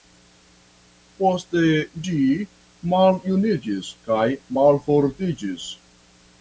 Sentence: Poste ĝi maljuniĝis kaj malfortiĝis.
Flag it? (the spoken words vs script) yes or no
no